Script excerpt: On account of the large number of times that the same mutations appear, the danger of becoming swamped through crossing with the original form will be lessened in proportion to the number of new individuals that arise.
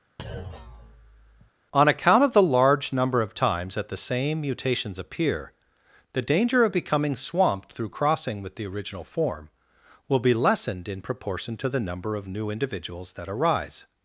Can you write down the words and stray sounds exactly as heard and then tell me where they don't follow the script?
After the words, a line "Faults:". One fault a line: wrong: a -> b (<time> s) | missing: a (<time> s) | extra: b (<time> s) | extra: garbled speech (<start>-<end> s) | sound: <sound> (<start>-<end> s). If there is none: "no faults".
On account of the large number of times that the same mutations appear, the danger of becoming swamped through crossing with the original form will be lessened in proportion to the number of new individuals that arise.
Faults:
sound: thud (0.2-1.5 s)